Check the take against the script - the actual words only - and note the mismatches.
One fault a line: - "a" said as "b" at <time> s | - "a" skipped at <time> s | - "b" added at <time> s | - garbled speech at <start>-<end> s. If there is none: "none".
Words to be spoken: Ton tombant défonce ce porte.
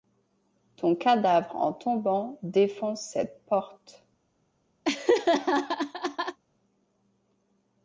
- "cadavre en" added at 0.9 s
- "ce" said as "cette" at 3.0 s